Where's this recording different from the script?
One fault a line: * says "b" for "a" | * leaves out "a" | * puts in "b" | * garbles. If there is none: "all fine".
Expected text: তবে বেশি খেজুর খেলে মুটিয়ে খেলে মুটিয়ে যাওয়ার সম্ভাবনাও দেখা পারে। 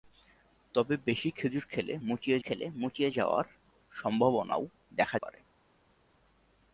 all fine